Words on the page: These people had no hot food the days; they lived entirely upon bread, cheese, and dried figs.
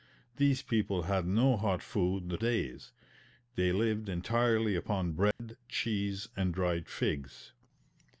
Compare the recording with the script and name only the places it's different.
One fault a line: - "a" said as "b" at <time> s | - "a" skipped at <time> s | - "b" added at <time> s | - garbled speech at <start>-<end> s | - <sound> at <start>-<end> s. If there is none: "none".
- dropout at 5.3-5.4 s